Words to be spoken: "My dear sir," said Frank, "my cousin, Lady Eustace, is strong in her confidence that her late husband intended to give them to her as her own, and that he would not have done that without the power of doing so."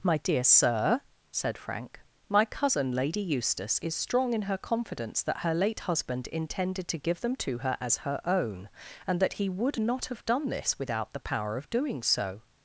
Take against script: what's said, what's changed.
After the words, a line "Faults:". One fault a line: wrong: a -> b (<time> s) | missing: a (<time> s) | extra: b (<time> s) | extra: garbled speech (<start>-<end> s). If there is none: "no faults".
"My dear sir," said Frank, "my cousin, Lady Eustace, is strong in her confidence that her late husband intended to give them to her as her own, and that he would not have done this without the power of doing so."
Faults:
wrong: that -> this (10.5 s)